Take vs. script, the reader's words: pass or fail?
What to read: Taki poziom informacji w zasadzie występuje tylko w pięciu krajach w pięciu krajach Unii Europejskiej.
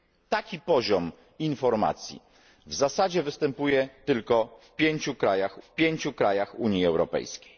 pass